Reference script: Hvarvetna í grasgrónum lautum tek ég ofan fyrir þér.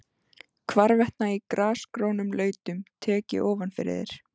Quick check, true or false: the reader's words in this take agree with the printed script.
true